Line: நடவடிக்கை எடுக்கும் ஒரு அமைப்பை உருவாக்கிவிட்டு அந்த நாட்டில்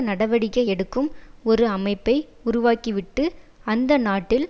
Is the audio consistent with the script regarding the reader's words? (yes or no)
yes